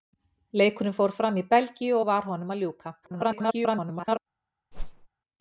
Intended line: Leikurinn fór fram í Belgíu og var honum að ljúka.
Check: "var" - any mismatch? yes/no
no